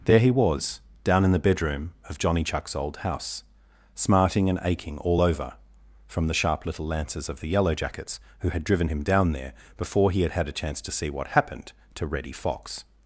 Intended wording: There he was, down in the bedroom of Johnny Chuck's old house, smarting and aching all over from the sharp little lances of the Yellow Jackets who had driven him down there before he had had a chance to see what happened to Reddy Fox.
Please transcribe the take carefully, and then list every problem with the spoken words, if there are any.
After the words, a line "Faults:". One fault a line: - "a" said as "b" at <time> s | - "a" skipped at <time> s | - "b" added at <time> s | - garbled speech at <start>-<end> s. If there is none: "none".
There he was, down in the bedroom of Johnny Chuck's old house, smarting and aching all over from the sharp little lances of the Yellow Jackets who had driven him down there before he had had a chance to see what happened to Reddy Fox.
Faults:
none